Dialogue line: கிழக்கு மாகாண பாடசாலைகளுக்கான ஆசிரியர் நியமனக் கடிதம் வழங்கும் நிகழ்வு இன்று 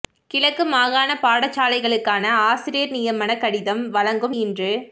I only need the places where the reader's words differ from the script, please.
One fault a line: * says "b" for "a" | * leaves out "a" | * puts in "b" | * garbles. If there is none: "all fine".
* leaves out "நிகழ்வு"